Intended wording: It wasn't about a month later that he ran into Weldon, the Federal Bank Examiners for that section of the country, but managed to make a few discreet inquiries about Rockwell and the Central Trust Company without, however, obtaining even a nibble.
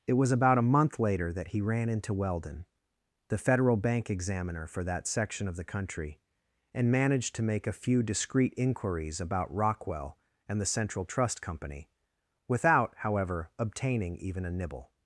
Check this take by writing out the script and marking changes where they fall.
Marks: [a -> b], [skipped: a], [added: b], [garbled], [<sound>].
It [wasn't -> was] about a month later that he ran into Weldon, the Federal Bank [Examiners -> Examiner] for that section of the country, [but -> and] managed to make a few discreet inquiries about Rockwell and the Central Trust Company without, however, obtaining even a nibble.